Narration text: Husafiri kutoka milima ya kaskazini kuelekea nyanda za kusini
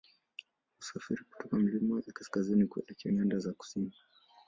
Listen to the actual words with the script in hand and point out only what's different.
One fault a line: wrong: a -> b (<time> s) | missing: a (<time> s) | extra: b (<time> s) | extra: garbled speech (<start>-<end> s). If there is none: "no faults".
no faults